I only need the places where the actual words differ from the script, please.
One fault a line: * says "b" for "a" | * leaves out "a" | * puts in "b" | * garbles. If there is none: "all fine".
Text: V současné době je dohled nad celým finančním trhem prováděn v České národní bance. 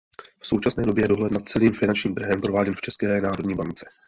all fine